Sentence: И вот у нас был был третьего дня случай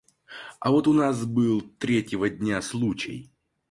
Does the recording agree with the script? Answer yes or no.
no